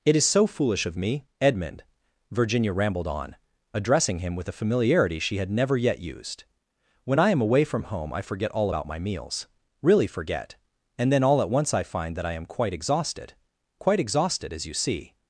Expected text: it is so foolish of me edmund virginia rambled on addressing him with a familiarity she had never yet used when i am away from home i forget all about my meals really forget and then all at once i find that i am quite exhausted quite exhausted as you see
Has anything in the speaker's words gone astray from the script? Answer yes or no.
no